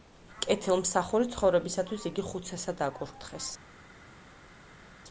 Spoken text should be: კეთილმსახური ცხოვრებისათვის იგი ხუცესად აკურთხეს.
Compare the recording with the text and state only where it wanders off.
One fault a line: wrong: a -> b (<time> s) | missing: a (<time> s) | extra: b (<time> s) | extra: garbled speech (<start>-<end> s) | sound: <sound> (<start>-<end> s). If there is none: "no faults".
no faults